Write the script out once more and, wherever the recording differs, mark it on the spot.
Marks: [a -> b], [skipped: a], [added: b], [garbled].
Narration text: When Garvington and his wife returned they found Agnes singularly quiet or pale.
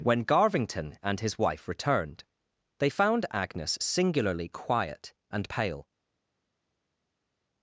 When Garvington and his wife returned they found Agnes singularly quiet [or -> and] pale.